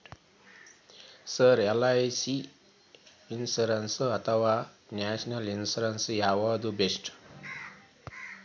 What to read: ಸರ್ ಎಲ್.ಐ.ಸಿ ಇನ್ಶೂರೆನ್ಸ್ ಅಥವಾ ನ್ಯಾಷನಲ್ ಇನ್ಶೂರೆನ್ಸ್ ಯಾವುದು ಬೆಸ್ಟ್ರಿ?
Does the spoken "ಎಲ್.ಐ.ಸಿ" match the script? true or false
true